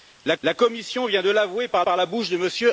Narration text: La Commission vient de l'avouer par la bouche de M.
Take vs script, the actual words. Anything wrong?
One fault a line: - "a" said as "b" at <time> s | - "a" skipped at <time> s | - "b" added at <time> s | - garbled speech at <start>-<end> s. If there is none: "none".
- "la" added at 0.4 s
- "par" added at 1.8 s